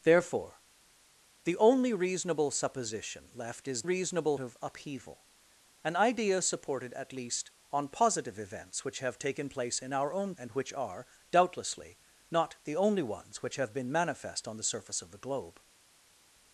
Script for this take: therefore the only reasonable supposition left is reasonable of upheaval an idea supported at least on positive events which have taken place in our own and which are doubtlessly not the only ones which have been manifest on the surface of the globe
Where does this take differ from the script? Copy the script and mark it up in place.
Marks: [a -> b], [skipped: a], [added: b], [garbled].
therefore the only reasonable supposition left is reasonable of upheaval an idea supported at least on positive events which have taken place in our own and which are doubtlessly not the only ones which have been manifest on the surface of the globe